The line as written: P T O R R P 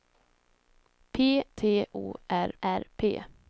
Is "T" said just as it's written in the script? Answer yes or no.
yes